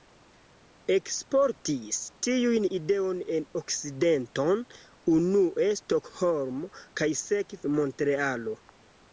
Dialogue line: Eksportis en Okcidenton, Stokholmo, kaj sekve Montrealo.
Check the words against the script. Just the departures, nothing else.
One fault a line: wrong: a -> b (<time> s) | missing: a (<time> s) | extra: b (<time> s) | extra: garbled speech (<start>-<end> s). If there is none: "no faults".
extra: tiun ideon (2.3 s)
extra: unue (5.2 s)